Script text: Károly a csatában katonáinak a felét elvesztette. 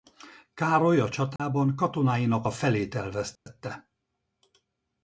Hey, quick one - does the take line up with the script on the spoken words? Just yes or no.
yes